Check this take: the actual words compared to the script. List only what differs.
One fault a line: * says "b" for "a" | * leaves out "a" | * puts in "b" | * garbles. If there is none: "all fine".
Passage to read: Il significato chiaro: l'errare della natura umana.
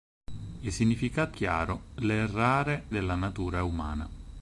all fine